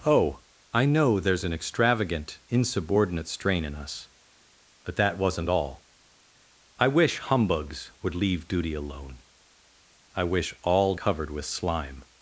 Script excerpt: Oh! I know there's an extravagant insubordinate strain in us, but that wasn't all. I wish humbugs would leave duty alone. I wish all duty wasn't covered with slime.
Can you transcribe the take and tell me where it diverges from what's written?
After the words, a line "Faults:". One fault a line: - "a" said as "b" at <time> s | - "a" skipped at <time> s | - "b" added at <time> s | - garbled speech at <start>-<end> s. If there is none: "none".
Oh! I know there's an extravagant insubordinate strain in us, but that wasn't all. I wish humbugs would leave duty alone. I wish all covered with slime.
Faults:
- "duty wasn't" skipped at 10.9 s